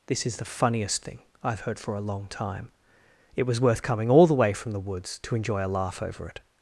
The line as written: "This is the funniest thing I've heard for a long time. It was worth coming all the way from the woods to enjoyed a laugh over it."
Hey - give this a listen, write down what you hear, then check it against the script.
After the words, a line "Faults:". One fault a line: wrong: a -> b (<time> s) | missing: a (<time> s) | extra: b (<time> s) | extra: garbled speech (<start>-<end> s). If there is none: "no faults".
"This is the funniest thing I've heard for a long time. It was worth coming all the way from the woods to enjoy a laugh over it."
Faults:
wrong: enjoyed -> enjoy (5.4 s)